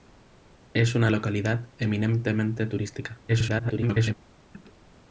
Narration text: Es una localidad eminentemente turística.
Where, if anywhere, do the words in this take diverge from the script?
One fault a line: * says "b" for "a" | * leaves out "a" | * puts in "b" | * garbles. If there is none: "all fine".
* garbles